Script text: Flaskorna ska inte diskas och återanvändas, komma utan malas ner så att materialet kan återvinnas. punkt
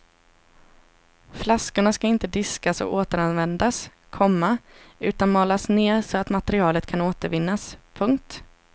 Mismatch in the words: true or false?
false